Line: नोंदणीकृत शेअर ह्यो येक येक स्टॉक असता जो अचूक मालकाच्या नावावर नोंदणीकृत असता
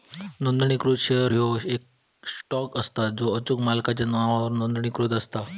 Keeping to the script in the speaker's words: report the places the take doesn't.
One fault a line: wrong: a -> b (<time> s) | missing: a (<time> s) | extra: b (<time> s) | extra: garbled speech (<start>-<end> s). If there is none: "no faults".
missing: येक (1.9 s)